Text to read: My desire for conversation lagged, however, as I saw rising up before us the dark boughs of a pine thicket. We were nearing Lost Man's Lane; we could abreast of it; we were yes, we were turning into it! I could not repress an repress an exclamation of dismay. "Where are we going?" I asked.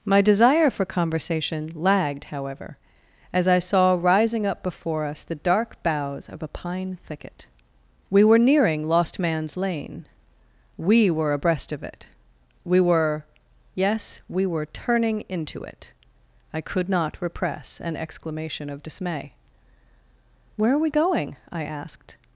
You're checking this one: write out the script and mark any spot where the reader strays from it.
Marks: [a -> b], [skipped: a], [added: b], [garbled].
My desire for conversation lagged, however, as I saw rising up before us the dark boughs of a pine thicket. We were nearing Lost Man's Lane; we [could -> were] abreast of it; we were yes, we were turning into it! I could not repress an [skipped: repress an] exclamation of dismay. "Where are we going?" I asked.